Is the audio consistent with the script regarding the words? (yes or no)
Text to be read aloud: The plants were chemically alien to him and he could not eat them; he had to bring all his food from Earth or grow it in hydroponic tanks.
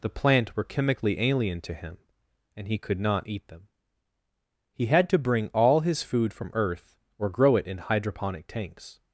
no